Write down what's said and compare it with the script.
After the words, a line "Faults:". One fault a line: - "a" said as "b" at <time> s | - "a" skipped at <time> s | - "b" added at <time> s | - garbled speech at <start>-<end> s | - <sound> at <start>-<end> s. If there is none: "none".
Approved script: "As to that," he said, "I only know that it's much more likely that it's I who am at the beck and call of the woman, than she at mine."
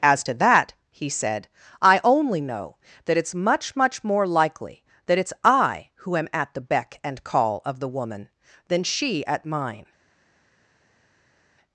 "As to that," he said, "I only know that it's much much more likely that it's I who am at the beck and call of the woman, than she at mine."
Faults:
- "much" added at 3.8 s